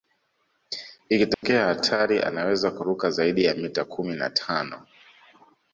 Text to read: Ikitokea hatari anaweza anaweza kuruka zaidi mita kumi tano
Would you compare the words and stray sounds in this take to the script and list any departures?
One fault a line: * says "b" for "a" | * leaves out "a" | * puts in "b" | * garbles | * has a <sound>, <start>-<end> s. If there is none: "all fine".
* has a dropout, 1.3-1.4 s
* leaves out "anaweza"
* puts in "ya"
* puts in "na"